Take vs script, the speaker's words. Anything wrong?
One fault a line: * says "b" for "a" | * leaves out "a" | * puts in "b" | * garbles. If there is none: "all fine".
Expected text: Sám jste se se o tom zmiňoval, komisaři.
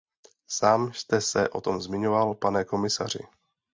* leaves out "se"
* puts in "pane"